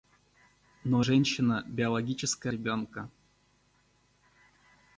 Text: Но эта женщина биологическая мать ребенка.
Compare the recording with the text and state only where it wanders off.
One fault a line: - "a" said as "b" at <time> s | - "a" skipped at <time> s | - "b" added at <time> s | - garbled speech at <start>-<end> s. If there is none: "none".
- "эта" skipped at 1.1 s
- "мать" skipped at 2.5 s